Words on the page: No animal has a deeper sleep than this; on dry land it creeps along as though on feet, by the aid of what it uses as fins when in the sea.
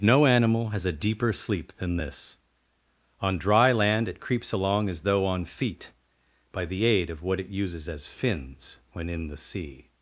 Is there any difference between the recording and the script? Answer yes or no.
no